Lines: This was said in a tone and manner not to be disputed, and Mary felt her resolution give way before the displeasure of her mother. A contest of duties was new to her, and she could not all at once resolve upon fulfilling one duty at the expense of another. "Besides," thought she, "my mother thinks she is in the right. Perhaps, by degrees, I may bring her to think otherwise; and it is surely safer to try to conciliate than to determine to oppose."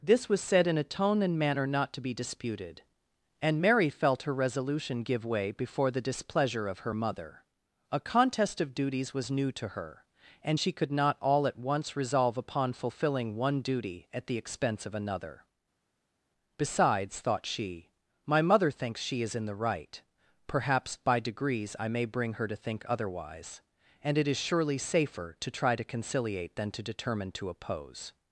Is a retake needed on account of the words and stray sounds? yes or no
no